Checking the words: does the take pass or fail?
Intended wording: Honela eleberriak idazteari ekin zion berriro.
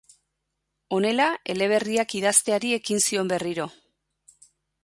pass